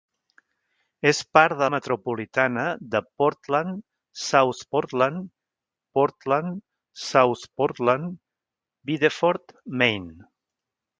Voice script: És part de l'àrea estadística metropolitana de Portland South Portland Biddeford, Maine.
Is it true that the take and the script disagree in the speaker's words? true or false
true